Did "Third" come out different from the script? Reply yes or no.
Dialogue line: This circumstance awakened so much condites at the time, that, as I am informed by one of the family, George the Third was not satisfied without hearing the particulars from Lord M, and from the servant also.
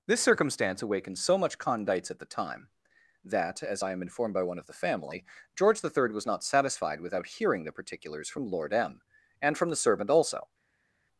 no